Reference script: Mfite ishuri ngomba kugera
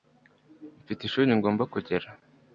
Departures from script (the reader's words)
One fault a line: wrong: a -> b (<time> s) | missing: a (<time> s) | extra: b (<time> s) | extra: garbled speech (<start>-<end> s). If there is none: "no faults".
no faults